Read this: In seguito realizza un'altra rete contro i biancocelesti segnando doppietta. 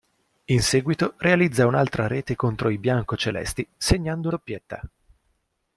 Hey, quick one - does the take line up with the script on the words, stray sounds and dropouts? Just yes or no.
yes